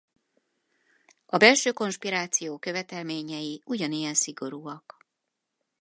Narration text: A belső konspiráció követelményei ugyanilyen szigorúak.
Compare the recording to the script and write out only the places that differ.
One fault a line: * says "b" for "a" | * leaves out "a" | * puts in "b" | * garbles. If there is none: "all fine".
all fine